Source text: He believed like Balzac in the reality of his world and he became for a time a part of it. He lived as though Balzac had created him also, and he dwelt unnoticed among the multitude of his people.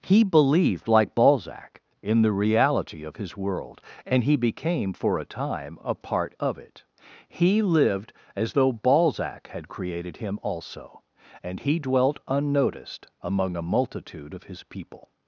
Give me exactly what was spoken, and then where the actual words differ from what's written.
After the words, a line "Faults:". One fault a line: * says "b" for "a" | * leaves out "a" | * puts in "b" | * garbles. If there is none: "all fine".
He believed like Balzac in the reality of his world and he became for a time a part of it. He lived as though Balzac had created him also, and he dwelt unnoticed among a multitude of his people.
Faults:
* says "a" for "the"